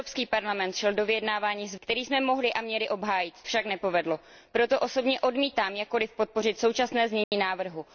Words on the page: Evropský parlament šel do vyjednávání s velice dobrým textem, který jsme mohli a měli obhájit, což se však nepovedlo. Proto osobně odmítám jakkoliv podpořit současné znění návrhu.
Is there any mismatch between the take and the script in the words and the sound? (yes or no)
yes